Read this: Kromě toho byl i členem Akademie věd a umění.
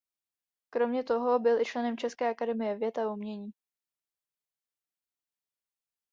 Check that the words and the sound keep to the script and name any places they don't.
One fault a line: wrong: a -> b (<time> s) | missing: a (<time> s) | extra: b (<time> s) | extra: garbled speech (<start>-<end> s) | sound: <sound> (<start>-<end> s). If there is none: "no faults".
extra: České (2.0 s)